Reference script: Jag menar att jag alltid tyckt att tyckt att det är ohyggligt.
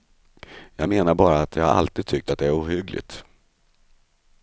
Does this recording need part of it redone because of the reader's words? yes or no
yes